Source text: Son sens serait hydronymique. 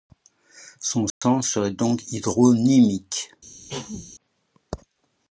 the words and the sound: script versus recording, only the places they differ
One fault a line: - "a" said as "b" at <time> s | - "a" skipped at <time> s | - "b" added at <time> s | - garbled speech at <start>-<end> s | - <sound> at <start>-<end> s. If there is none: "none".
- dropout at 1.1-1.2 s
- "donc" added at 1.7 s
- cough at 3.7-4.1 s